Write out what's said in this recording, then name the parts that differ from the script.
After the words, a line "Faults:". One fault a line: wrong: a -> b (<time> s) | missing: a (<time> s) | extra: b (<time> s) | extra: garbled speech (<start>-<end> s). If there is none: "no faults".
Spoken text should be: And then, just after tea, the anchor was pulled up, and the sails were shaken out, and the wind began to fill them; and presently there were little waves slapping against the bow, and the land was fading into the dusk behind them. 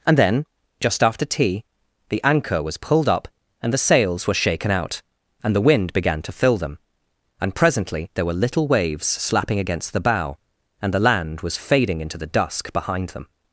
And then, just after tea, the anchor was pulled up, and the sails were shaken out, and the wind began to fill them; and presently there were little waves slapping against the bow, and the land was fading into the dusk behind them.
Faults:
no faults